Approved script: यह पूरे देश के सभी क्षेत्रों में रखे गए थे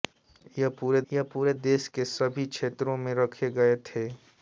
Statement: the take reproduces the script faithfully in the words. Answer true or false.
false